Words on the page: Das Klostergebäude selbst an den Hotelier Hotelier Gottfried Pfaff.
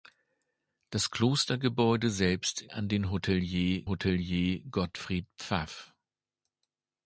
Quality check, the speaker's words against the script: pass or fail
pass